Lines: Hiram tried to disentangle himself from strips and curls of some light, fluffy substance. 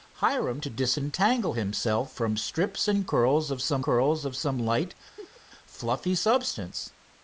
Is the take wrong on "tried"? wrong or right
wrong